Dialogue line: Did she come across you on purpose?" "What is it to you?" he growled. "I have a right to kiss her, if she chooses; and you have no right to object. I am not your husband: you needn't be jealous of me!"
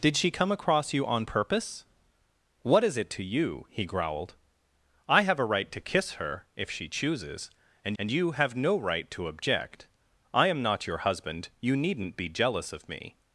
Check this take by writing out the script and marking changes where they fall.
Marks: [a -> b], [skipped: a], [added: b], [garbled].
Did she come across you on purpose?" "What is it to you?" he growled. "I have a right to kiss her, if she chooses; and [added: and] you have no right to object. I am not your husband: you needn't be jealous of me!"